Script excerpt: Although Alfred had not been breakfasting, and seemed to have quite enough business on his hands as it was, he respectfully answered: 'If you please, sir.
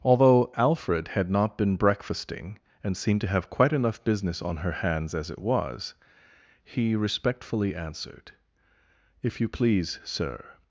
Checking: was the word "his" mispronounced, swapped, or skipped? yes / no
yes